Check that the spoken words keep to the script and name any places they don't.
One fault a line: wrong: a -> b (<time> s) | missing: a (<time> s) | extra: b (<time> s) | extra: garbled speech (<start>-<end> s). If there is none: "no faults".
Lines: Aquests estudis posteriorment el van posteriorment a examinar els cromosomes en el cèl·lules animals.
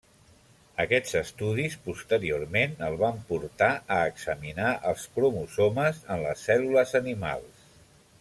wrong: posteriorment -> portar (3.3 s)
wrong: el -> les (6.3 s)